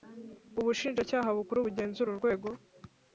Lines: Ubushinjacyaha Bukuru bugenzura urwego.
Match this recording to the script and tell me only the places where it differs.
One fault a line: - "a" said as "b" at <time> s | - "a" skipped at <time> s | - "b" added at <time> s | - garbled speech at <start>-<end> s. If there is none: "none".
none